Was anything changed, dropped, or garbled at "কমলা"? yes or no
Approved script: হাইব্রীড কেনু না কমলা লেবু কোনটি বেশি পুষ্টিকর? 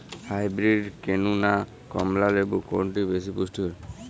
no